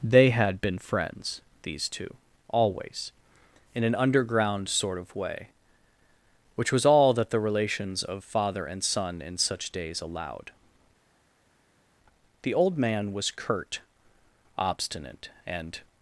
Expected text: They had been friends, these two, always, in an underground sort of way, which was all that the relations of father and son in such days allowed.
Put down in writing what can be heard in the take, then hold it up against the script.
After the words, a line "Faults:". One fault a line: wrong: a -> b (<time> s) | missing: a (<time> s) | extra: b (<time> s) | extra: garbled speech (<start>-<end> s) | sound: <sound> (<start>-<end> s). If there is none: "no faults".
They had been friends, these two, always, in an underground sort of way, which was all that the relations of father and son in such days allowed. The old man was curt, obstinate, and
Faults:
extra: The old man was curt obstinate and (12.4 s)